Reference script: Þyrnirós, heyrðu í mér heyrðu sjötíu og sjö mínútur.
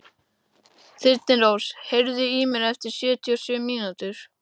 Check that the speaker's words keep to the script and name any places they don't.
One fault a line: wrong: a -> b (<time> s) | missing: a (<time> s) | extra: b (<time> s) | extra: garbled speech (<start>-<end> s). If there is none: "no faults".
wrong: heyrðu -> eftir (2.7 s)